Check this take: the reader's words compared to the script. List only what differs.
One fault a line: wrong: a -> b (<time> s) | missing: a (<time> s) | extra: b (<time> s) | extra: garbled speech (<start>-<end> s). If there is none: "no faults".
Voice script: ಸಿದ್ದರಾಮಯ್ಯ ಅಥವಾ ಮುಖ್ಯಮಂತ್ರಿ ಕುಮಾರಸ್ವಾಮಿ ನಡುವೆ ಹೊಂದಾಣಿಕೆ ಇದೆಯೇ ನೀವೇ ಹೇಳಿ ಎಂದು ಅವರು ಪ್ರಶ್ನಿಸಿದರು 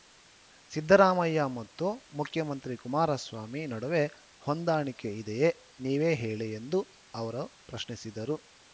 wrong: ಅಥವಾ -> ಮತ್ತು (1.6 s)